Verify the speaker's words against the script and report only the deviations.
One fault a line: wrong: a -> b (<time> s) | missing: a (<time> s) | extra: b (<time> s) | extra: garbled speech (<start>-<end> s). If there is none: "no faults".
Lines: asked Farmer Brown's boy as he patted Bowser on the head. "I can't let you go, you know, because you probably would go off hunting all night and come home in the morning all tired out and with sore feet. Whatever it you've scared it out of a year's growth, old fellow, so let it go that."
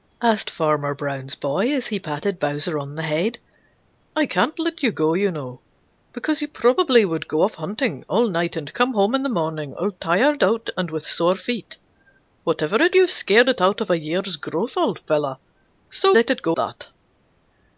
no faults